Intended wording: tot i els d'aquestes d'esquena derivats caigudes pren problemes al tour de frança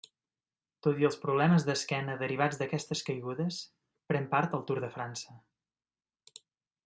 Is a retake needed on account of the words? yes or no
yes